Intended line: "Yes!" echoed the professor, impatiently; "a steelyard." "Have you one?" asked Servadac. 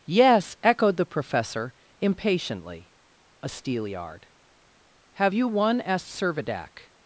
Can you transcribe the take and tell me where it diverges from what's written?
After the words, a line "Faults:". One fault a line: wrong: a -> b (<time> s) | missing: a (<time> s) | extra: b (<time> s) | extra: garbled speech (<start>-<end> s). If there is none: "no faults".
"Yes!" echoed the professor, impatiently; "a steelyard." "Have you one?" asked Servadac.
Faults:
no faults